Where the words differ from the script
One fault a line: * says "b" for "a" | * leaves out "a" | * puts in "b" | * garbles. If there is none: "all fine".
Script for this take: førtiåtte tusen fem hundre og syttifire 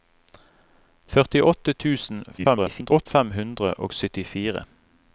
* garbles